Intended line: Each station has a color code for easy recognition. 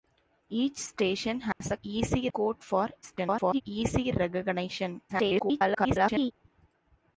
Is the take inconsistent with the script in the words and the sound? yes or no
yes